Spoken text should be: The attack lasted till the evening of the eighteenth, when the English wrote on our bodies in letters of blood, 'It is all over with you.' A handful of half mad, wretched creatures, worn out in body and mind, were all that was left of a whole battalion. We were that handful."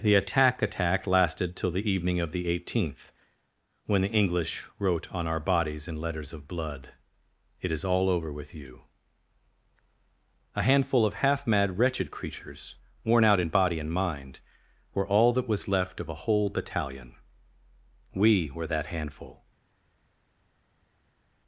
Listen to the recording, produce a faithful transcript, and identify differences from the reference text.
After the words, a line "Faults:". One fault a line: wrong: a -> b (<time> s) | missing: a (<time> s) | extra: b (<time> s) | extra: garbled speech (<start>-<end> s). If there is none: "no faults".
The attack attack lasted till the evening of the eighteenth, when the English wrote on our bodies in letters of blood, 'It is all over with you.' A handful of half mad, wretched creatures, worn out in body and mind, were all that was left of a whole battalion. We were that handful."
Faults:
extra: attack (0.6 s)